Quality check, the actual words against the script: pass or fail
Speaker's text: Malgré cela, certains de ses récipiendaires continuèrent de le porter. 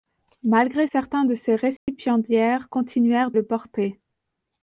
fail